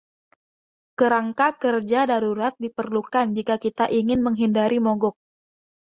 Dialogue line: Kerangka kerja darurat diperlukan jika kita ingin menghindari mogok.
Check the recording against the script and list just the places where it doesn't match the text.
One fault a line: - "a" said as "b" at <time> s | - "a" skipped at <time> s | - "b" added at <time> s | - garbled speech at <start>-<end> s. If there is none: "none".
none